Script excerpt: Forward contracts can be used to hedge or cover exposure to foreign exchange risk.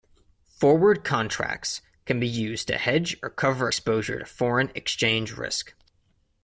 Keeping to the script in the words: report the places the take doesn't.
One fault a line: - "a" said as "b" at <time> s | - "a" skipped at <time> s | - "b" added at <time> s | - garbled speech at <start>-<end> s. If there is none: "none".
none